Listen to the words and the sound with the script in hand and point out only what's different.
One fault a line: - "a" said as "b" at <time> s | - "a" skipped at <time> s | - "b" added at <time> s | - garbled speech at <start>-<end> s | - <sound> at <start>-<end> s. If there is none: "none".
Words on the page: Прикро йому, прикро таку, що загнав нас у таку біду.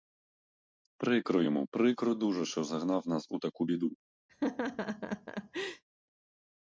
- "таку" said as "дуже" at 2.2 s
- laugh at 4.3-5.8 s